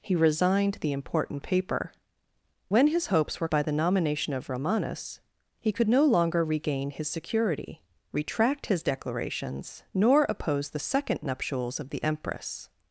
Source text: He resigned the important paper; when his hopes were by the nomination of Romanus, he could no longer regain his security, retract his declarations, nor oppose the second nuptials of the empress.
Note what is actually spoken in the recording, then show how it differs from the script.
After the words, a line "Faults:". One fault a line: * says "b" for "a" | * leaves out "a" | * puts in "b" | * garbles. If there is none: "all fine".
He resigned the important paper; when his hopes were by the nomination of Romanus, he could no longer regain his security, retract his declarations, nor oppose the second nuptials of the empress.
Faults:
all fine